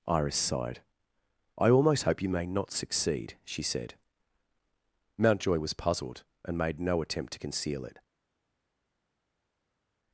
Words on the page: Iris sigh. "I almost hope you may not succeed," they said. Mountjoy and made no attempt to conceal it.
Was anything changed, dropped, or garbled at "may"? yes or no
no